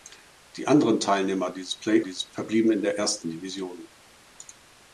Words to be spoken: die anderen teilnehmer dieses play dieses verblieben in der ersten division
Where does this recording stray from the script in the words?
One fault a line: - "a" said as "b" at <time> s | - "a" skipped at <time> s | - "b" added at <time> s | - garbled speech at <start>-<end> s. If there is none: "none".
none